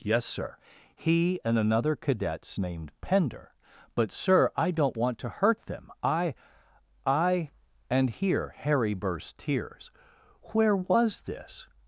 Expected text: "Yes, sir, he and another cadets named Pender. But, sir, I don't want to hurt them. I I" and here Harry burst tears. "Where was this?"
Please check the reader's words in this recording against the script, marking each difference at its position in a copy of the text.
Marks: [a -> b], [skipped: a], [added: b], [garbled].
"Yes, sir, he and another cadets named Pender. But, sir, I don't want to hurt them. I I" and here Harry burst tears. "Where was this?"